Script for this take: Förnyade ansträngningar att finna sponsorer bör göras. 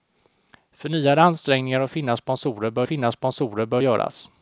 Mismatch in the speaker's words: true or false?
true